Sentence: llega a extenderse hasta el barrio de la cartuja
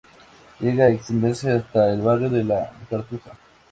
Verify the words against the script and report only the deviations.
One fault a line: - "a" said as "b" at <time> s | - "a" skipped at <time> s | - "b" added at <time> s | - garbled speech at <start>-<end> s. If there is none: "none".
none